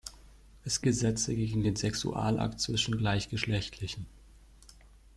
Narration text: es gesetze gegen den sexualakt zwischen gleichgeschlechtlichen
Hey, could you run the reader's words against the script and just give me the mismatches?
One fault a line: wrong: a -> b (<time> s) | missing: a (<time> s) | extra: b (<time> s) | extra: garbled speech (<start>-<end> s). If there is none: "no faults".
no faults